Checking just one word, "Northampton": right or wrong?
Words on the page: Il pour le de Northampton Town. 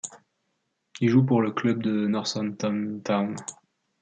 right